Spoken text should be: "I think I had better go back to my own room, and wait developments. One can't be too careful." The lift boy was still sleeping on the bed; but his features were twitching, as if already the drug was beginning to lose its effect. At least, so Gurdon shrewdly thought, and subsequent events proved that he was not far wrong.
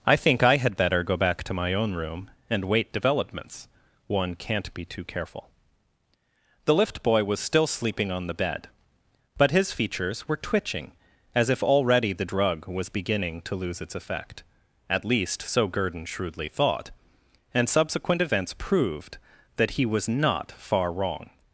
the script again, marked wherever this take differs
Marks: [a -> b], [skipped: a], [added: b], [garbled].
"I think I had better go back to my own room, and wait developments. One can't be too careful." The lift boy was still sleeping on the bed; but his features were twitching, as if already the drug was beginning to lose its effect. At least, so Gurdon shrewdly thought, and subsequent events proved that he was not far wrong.